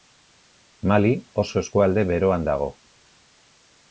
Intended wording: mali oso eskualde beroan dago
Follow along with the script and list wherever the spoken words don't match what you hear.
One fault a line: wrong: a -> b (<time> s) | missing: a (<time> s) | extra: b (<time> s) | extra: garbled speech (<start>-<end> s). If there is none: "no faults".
no faults